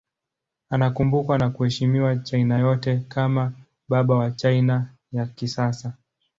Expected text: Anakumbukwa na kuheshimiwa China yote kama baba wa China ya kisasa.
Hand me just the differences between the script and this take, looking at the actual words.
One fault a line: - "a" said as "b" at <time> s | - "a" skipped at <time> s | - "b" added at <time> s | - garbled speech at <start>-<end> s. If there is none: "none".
none